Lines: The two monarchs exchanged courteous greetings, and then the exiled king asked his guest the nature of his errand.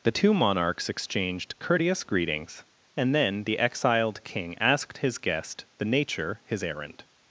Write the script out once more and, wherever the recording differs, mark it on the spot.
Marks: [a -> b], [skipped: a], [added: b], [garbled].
The two monarchs exchanged courteous greetings, and then the exiled king asked his guest the nature [skipped: of] his errand.